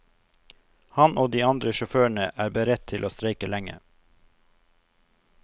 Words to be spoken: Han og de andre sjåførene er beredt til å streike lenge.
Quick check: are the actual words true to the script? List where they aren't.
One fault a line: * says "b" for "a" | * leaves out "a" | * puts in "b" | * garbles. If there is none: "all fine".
all fine